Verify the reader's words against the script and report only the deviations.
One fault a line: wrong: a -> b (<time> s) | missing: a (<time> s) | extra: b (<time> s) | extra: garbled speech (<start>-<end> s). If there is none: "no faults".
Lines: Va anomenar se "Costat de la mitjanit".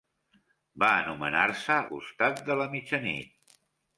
no faults